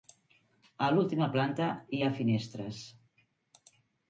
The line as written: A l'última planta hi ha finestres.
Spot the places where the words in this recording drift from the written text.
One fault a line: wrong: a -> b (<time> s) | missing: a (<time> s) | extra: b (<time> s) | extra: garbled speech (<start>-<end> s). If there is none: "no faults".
no faults